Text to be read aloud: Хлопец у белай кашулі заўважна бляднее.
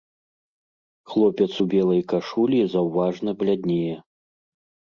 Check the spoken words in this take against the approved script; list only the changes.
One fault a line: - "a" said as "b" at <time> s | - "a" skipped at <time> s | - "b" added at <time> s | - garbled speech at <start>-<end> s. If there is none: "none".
none